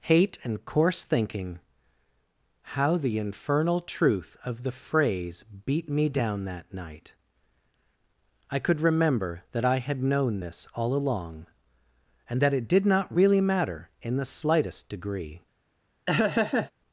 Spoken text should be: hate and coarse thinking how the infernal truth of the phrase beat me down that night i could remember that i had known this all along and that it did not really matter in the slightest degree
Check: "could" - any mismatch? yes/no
no